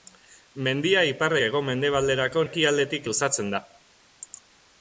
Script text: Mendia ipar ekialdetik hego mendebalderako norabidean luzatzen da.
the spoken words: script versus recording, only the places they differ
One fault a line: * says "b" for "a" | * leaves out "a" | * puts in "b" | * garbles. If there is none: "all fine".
* leaves out "ekialdetik"
* says "ekialdetik" for "norabidean"